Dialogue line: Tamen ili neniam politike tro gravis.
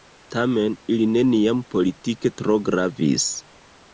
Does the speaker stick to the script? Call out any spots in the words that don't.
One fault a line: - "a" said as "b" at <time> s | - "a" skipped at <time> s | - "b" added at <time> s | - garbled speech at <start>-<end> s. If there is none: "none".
none